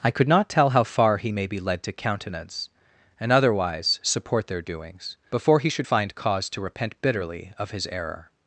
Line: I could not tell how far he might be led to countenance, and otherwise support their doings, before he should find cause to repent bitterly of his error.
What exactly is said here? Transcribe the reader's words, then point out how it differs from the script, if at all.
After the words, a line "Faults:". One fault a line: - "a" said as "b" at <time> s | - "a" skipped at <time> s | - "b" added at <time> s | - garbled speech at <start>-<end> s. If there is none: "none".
I could not tell how far he may be led to countenance, and otherwise support their doings, before he should find cause to repent bitterly of his error.
Faults:
- "might" said as "may" at 1.3 s